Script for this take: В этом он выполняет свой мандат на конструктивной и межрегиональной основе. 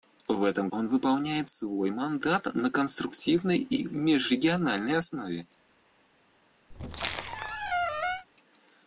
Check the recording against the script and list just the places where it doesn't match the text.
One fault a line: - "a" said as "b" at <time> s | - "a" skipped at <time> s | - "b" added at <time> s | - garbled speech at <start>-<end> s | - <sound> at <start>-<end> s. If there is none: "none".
- squeak at 6.7-8.3 s